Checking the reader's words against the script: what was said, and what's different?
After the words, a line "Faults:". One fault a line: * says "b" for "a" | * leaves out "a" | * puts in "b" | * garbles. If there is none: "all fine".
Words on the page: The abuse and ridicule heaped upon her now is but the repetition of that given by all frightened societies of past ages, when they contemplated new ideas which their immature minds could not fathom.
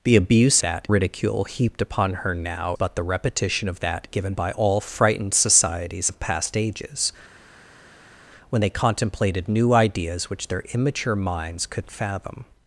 The abuse that ridicule heaped upon her now but the repetition of that given by all frightened societies of past ages, when they contemplated new ideas which their immature minds could fathom.
Faults:
* says "that" for "and"
* leaves out "is"
* leaves out "not"